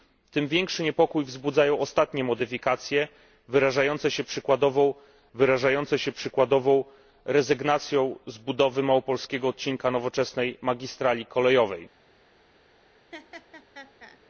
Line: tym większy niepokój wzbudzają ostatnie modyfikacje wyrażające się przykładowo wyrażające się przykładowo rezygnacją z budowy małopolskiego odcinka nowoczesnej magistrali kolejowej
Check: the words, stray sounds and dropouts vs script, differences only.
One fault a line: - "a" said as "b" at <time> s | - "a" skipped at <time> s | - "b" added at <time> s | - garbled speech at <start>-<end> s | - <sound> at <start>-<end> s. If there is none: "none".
- laugh at 13.1-14.2 s